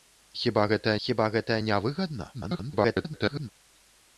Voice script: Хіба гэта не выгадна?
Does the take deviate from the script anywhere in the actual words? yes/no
yes